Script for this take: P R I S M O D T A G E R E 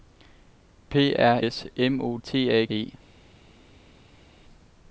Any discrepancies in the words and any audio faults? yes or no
yes